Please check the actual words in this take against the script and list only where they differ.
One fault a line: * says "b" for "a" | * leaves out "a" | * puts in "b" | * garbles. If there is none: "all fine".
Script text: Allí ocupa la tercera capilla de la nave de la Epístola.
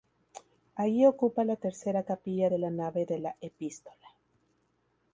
all fine